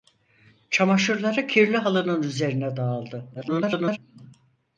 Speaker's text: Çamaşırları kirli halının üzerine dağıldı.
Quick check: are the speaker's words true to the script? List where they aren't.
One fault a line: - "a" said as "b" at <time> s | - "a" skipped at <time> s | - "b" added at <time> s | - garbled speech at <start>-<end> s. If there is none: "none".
- garbled speech at 3.3-4.0 s